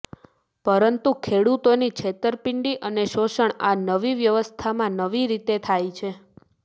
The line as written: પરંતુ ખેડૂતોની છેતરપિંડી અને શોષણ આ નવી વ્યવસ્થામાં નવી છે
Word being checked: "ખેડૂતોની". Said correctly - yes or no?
yes